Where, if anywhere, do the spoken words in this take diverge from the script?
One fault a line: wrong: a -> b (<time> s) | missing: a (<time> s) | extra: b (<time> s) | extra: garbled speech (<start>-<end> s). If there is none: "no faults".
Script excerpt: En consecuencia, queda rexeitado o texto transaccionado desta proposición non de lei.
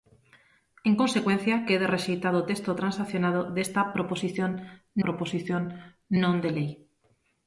extra: proposición (5.0 s)